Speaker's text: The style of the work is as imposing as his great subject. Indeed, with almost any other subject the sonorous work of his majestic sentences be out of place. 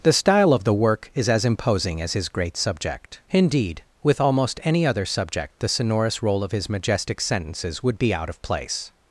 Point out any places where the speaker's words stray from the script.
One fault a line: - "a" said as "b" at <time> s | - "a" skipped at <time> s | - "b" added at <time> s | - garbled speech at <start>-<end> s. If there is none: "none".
- "work" said as "roll" at 6.2 s
- "would" added at 7.8 s